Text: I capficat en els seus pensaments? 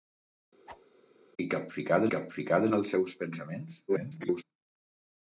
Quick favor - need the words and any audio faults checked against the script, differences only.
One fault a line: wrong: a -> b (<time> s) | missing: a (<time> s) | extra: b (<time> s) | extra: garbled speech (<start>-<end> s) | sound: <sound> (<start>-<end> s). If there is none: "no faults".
sound: whoosh (0.7-0.8 s)
extra: capficat (2.1 s)
extra: garbled speech (3.9-4.4 s)